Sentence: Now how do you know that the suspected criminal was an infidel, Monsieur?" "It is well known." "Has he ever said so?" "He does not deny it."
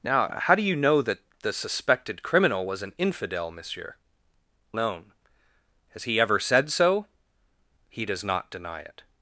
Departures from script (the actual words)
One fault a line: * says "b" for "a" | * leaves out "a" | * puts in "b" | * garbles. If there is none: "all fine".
* leaves out "It is well"